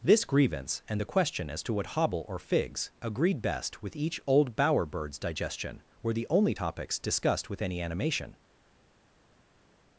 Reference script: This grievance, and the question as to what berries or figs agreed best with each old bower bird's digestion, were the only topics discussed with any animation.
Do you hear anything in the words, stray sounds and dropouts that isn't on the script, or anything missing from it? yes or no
yes